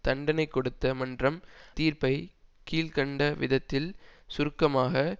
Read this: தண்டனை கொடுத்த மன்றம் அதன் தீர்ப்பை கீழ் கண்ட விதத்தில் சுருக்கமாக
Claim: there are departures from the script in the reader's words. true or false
true